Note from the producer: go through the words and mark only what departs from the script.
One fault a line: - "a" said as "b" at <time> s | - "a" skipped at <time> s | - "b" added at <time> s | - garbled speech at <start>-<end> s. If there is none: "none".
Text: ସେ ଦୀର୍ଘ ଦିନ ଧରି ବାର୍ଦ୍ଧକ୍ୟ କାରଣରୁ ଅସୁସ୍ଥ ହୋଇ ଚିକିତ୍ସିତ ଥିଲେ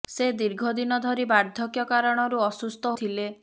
- "ହୋଇ ଚିକିତ୍ସିତ" skipped at 3.0 s